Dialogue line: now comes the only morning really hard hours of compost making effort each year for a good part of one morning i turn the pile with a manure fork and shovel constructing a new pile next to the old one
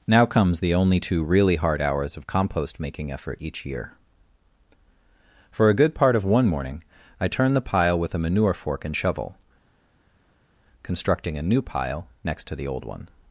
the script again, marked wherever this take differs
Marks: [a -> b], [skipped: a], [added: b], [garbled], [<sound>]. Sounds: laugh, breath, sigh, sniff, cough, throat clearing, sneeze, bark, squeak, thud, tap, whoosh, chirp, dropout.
now comes the only [morning -> two] really hard hours of compost making effort each year for a good part of one morning i turn the pile with a manure fork and shovel constructing a new pile next to the old one